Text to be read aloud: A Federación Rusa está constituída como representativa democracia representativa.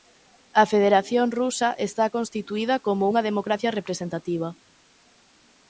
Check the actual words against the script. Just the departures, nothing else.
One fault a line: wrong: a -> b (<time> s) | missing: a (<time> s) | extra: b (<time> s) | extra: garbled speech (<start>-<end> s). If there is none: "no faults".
wrong: representativa -> unha (3.1 s)